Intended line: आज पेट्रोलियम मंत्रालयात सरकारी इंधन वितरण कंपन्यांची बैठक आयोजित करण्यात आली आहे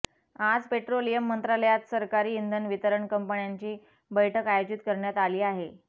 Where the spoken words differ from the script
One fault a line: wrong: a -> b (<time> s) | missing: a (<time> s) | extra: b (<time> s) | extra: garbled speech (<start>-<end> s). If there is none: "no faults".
no faults